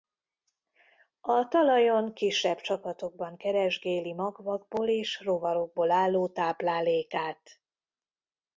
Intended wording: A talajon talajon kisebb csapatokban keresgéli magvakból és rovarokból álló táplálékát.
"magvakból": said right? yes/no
yes